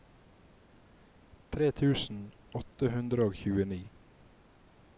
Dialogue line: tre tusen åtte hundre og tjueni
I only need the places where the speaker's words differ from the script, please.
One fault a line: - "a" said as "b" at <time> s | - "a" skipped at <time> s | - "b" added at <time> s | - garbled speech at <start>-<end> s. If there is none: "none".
none